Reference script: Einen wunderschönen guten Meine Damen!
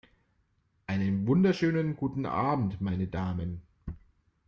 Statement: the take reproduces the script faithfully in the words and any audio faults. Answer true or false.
false